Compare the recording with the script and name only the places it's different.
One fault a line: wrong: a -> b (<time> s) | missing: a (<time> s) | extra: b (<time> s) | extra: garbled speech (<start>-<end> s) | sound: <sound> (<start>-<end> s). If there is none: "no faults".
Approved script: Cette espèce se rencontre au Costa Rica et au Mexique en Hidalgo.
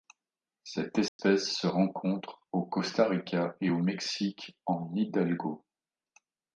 sound: dropout (1.1-1.2 s)